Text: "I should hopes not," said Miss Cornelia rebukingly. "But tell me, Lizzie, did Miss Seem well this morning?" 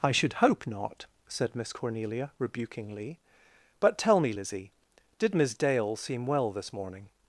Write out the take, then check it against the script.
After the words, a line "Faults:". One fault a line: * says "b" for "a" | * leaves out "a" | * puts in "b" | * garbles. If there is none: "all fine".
"I should hope not," said Miss Cornelia rebukingly. "But tell me, Lizzie, did Miss Dale seem well this morning?"
Faults:
* says "hope" for "hopes"
* puts in "Dale"